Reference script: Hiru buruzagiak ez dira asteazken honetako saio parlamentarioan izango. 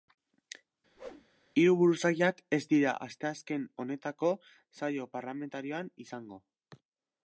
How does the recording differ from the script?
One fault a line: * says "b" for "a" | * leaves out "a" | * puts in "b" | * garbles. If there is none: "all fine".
all fine